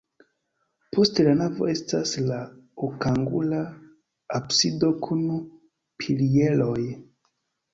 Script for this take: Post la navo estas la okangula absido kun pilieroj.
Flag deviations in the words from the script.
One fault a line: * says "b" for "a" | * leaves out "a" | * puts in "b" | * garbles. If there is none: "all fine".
all fine